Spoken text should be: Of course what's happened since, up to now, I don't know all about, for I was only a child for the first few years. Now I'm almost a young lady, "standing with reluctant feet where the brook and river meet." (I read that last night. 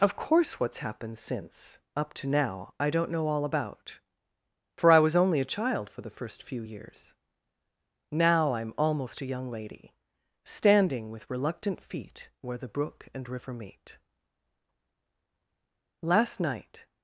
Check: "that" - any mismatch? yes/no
yes